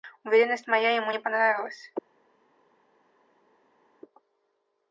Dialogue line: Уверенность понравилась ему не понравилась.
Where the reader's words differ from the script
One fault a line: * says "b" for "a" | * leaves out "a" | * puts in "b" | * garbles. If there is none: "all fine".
* says "моя" for "понравилась"